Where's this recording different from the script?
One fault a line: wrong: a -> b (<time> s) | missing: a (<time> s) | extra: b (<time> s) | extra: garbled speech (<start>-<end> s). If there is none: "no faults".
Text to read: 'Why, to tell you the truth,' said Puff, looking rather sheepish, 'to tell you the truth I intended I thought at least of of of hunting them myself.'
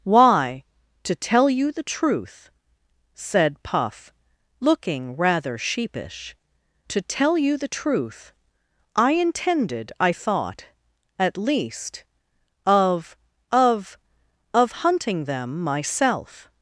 no faults